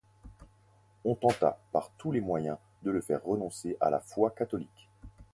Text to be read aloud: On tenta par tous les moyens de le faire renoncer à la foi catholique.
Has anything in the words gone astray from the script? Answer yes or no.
no